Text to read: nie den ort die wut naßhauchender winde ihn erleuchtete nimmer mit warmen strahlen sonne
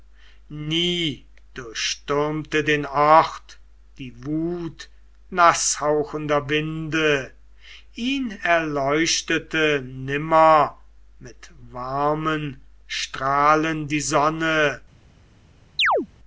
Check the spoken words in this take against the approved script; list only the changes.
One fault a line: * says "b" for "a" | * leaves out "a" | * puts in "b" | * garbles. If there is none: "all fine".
* puts in "durchstürmte"
* puts in "die"